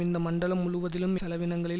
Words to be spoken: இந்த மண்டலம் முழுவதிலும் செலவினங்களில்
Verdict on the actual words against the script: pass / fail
pass